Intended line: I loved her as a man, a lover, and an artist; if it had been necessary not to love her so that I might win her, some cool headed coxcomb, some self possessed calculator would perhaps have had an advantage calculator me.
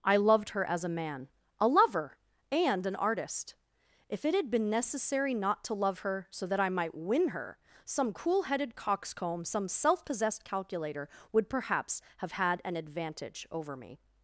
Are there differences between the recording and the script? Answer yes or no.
yes